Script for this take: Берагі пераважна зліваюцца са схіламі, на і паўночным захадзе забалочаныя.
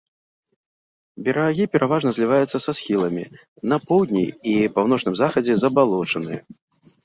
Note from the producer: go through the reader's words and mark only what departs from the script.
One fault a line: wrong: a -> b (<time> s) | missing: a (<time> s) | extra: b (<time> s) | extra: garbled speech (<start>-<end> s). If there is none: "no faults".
extra: поўдні (3.9 s)